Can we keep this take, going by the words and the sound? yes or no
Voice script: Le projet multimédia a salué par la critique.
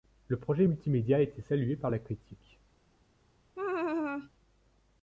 no